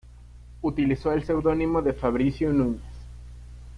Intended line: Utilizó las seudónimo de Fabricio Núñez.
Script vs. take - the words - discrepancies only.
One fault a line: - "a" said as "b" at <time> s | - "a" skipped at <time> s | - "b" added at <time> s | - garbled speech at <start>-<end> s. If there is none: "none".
- "las" said as "el" at 1.1 s